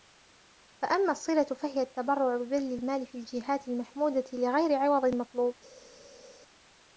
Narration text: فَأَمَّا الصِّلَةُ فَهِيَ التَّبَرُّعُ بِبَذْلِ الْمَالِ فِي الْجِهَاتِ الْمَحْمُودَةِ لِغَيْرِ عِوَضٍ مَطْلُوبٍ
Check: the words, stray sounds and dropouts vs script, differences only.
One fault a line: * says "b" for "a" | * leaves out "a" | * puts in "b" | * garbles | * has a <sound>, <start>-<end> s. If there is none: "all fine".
all fine